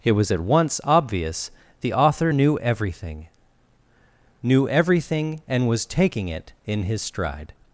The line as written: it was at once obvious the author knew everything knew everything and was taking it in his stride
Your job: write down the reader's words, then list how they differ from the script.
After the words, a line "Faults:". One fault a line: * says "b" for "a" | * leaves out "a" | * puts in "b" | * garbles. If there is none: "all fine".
it was at once obvious the author knew everything knew everything and was taking it in his stride
Faults:
all fine